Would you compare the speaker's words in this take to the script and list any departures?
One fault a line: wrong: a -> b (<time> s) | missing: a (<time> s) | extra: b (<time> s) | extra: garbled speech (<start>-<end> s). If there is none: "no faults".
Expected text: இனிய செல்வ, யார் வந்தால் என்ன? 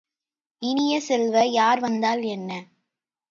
no faults